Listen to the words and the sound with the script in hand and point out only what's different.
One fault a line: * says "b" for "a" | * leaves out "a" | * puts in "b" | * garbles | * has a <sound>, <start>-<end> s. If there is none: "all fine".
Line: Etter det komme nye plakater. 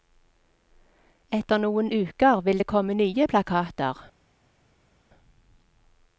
* puts in "noen uker vil"